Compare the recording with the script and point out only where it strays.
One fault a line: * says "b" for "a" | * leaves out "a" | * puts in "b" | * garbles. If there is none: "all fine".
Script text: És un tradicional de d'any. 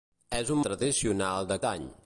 all fine